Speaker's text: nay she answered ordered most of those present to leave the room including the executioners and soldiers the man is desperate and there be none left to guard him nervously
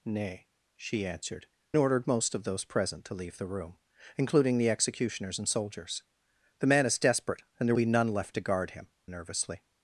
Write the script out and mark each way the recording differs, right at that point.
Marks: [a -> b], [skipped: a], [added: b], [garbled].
nay she answered ordered most of those present to leave the room including the executioners and soldiers the man is desperate and there be none left to guard him nervously